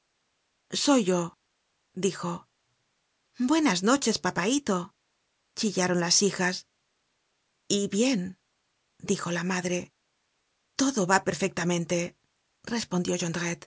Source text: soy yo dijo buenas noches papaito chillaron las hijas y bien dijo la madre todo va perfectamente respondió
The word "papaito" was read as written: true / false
true